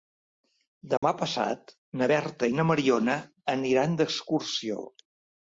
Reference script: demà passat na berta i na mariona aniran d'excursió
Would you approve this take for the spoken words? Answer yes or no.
yes